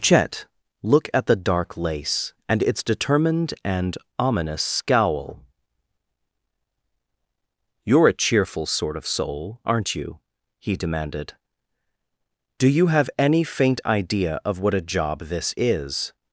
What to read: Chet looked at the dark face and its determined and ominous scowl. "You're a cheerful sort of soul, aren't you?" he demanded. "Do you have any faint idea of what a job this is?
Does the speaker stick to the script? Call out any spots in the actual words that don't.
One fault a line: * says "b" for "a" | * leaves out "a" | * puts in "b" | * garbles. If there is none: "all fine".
* says "look" for "looked"
* says "lace" for "face"